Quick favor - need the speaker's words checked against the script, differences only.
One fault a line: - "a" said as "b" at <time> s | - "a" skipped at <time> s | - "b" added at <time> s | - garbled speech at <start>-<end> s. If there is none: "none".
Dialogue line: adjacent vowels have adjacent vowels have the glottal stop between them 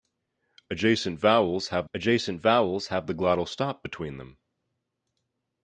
none